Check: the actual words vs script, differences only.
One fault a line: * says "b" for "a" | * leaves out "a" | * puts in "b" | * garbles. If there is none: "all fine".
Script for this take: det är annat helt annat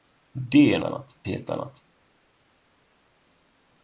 all fine